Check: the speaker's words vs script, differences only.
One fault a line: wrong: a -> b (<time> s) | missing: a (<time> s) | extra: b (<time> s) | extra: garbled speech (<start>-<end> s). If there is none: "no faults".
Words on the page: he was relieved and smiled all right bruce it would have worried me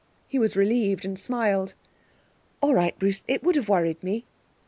no faults